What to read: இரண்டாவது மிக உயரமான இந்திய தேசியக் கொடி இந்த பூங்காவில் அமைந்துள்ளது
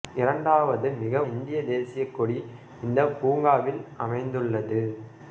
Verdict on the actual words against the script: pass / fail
fail